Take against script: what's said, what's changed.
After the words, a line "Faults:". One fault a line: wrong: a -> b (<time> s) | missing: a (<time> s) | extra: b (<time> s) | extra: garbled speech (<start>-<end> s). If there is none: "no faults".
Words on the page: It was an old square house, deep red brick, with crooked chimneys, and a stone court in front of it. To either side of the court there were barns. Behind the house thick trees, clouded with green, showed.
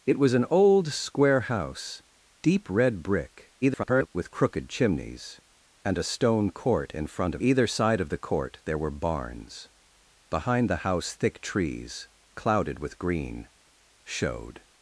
It was an old square house, deep red brick, [garbled] with crooked chimneys, and a stone court in front of either side of the court there were barns. Behind the house thick trees, clouded with green, showed.
Faults:
extra: garbled speech (3.6-4.1 s)
missing: it To (7.4 s)